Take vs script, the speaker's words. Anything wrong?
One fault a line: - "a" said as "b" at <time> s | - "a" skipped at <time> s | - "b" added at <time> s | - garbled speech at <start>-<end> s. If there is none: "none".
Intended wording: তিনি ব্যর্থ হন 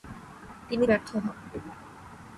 none